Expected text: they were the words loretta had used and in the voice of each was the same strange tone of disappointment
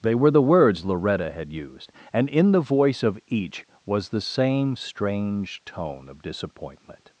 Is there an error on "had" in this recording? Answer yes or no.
no